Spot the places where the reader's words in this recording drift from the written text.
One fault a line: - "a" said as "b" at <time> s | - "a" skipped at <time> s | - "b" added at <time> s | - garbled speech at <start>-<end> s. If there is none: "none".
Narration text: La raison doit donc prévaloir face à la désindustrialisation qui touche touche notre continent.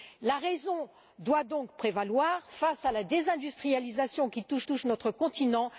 none